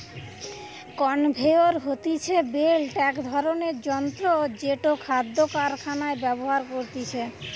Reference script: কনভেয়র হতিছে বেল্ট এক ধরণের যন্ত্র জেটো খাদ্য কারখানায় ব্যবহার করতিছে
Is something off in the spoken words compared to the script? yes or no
no